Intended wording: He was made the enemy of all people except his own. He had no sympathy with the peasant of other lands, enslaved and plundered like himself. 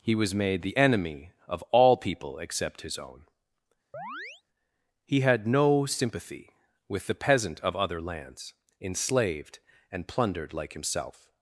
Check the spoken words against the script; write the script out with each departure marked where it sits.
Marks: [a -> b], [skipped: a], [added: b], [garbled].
He was made the enemy of all people except his own. He had no sympathy with the peasant of other lands, enslaved and plundered like himself.